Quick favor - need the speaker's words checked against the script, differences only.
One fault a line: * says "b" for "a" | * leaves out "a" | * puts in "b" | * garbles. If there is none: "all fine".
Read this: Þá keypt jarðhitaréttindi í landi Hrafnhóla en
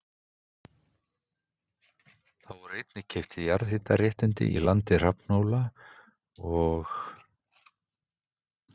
* puts in "voru einnig"
* says "og" for "en"